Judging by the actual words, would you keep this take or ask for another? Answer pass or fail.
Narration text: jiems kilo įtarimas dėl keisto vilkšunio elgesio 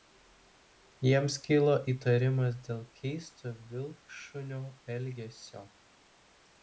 pass